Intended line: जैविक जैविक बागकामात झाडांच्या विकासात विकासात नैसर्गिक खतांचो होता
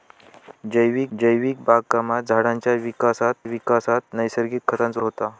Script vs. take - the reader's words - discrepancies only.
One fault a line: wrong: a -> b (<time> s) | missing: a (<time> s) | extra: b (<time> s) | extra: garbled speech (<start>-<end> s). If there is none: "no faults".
no faults